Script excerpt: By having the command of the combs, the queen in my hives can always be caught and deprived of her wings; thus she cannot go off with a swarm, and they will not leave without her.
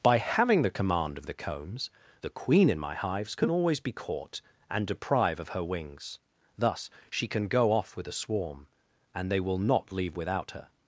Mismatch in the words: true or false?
true